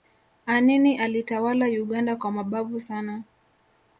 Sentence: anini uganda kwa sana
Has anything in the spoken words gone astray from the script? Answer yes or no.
yes